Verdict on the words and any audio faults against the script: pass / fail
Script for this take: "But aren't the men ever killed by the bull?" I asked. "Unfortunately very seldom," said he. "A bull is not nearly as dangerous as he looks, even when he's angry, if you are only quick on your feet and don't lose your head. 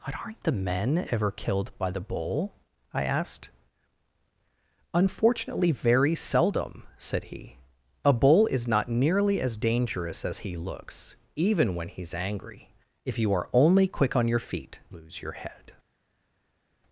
fail